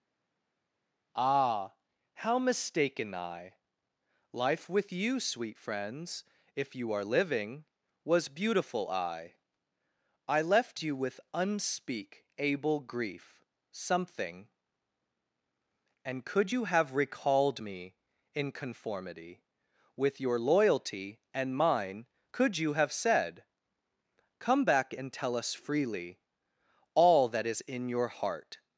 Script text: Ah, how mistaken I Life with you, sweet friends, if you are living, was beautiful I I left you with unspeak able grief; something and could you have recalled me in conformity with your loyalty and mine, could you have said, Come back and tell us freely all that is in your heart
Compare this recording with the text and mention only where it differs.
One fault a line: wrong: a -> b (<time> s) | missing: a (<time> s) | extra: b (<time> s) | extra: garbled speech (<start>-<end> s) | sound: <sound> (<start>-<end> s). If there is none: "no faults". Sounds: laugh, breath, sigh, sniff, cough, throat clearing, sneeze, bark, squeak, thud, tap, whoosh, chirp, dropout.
no faults